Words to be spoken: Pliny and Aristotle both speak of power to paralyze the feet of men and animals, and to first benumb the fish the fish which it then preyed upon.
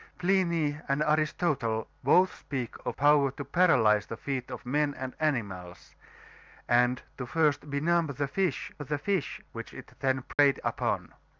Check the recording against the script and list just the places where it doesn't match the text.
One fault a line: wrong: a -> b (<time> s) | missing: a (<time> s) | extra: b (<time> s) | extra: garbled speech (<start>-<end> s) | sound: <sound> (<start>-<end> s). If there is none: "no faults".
sound: dropout (10.3-10.4 s)